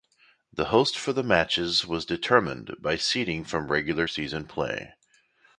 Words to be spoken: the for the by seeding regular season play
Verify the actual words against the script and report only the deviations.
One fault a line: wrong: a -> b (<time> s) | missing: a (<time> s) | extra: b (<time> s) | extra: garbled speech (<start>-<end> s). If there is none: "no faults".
extra: host (0.7 s)
extra: matches was determined (1.2 s)
extra: from (3.4 s)